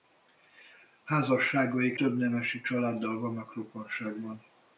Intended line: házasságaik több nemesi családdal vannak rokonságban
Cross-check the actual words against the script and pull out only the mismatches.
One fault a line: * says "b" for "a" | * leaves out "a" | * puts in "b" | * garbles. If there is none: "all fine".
all fine